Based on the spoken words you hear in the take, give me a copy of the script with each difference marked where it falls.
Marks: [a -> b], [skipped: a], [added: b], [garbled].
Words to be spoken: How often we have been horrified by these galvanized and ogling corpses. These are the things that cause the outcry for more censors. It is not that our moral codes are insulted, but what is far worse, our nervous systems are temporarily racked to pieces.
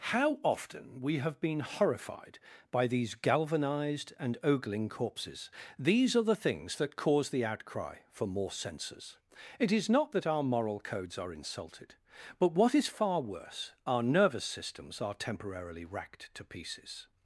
How often we have been horrified by these galvanized and ogling corpses. These are the things that cause the outcry for more censors. It is not that our moral codes are insulted, but what is far worse, our nervous systems are temporarily racked to pieces.